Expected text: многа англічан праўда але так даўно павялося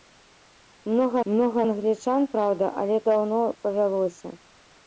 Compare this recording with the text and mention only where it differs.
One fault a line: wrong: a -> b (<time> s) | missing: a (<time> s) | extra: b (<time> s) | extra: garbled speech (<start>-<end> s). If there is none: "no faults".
extra: многа (1.3 s)
missing: так (3.0 s)